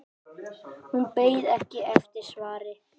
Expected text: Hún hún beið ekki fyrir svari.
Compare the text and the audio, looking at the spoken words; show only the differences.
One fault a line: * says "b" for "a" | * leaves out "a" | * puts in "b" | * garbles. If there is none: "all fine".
* leaves out "hún"
* says "eftir" for "fyrir"